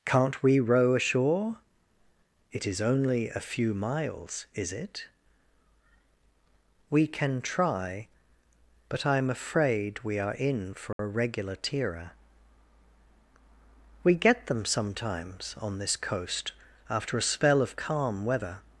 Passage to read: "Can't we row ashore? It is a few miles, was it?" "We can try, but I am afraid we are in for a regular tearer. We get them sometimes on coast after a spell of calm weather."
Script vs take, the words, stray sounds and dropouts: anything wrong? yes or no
yes